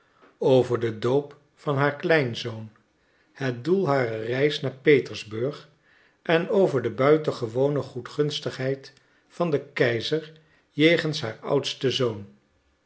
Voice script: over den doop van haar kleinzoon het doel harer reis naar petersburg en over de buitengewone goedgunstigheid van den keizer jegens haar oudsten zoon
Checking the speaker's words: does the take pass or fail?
pass